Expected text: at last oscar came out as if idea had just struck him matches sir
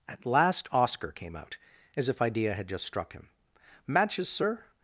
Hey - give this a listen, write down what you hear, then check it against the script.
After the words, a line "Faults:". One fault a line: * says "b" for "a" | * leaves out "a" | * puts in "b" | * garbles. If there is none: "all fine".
at last oscar came out as if idea had just struck him matches sir
Faults:
all fine